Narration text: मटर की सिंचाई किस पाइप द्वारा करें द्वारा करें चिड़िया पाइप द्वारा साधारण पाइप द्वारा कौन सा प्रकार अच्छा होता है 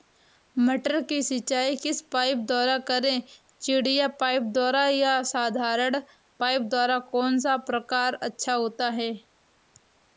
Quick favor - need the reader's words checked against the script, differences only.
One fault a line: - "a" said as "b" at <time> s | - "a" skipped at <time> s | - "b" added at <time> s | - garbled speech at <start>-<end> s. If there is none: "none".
- "द्वारा करें" skipped at 3.2 s
- "या" added at 4.9 s